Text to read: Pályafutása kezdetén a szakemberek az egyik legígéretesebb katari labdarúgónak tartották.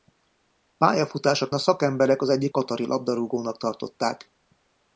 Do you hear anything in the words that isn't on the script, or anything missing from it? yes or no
yes